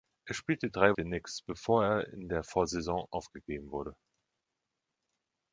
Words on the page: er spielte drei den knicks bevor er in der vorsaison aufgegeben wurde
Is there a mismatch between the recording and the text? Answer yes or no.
no